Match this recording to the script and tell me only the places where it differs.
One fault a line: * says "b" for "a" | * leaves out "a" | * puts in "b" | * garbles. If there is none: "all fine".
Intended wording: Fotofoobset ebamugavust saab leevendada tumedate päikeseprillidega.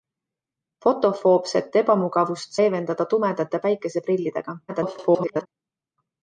* leaves out "saab"
* garbles